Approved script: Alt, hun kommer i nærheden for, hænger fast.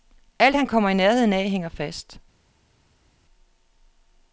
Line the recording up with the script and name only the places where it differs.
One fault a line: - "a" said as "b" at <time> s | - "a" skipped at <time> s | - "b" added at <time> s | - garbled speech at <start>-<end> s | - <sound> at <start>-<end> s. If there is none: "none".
- "hun" said as "han" at 0.5 s
- "for" said as "af" at 1.3 s